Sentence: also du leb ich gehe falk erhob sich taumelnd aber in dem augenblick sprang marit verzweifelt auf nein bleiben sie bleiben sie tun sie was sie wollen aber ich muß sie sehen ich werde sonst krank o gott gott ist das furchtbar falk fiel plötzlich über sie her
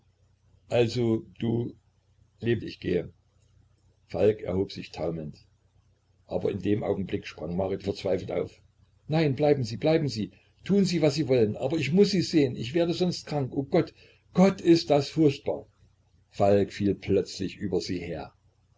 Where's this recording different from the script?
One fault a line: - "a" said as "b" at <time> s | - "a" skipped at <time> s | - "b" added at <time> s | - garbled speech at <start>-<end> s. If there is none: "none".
none